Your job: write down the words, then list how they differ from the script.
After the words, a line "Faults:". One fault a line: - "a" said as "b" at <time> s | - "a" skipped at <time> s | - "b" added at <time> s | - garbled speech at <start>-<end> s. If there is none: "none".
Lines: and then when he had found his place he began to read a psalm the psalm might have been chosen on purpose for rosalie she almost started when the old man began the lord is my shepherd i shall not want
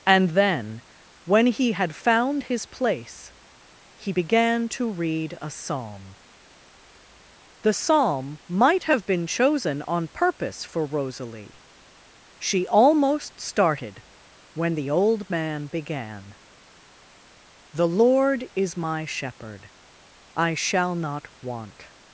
and then when he had found his place he began to read a psalm the psalm might have been chosen on purpose for rosalie she almost started when the old man began the lord is my shepherd i shall not want
Faults:
none